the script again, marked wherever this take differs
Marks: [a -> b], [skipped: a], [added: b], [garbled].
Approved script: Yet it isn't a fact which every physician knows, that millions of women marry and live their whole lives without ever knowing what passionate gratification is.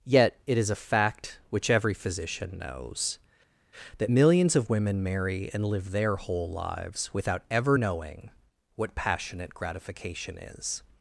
Yet it [isn't -> is] a fact which every physician knows, that millions of women marry and live their whole lives without ever knowing what passionate gratification is.